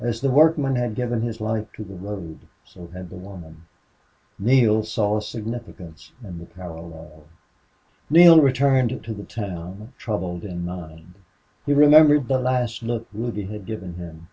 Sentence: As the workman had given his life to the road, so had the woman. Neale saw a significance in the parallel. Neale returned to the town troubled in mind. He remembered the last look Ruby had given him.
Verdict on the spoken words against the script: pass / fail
pass